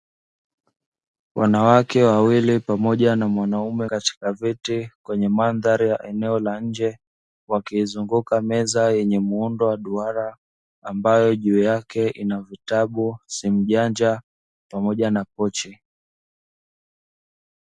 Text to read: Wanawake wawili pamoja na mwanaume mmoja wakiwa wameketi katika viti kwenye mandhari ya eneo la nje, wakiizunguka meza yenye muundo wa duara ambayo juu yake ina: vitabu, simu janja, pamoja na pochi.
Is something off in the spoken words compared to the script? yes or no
yes